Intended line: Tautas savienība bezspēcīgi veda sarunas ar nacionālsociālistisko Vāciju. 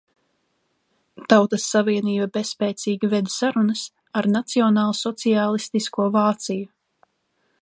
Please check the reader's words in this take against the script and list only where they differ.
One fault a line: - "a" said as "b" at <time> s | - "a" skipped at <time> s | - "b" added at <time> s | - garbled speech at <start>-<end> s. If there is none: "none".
none